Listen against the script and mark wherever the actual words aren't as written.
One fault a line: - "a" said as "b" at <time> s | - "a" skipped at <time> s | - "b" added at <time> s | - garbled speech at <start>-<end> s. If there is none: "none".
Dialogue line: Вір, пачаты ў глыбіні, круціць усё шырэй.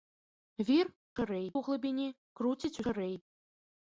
- "пачаты" said as "шырэй" at 1.2 s
- "усё" skipped at 2.7 s